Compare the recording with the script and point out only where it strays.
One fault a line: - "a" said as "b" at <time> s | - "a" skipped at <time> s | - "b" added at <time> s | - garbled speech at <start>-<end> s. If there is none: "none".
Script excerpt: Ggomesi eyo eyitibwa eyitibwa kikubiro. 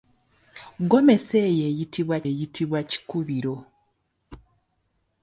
none